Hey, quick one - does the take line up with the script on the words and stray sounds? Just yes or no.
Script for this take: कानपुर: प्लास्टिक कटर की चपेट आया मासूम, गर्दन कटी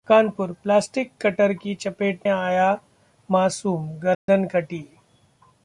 no